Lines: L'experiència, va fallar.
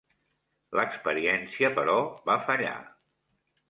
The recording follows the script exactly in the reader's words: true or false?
false